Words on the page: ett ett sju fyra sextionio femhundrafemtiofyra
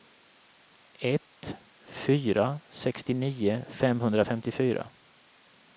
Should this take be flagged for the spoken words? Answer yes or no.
yes